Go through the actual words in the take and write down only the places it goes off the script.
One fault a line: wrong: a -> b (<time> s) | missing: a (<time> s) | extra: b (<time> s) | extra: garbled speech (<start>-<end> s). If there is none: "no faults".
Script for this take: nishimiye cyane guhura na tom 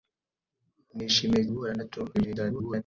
missing: cyane (1.4 s)
extra: garbled speech (2.1-2.8 s)